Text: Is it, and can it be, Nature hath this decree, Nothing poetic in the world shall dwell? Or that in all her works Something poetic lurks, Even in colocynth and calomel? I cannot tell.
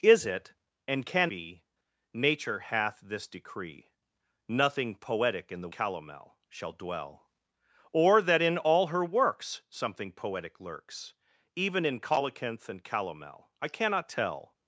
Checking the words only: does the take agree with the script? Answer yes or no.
no